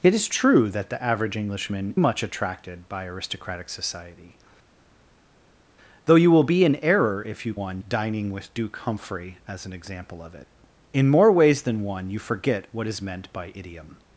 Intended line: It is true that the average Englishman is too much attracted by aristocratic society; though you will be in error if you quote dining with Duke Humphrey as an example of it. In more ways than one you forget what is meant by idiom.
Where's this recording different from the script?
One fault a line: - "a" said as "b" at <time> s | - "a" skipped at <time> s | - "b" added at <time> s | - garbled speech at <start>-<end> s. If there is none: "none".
- "is too" skipped at 1.9 s
- "quote" said as "one" at 7.5 s